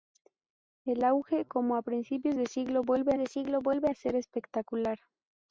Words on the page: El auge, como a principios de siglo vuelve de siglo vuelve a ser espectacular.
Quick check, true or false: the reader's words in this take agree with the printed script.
true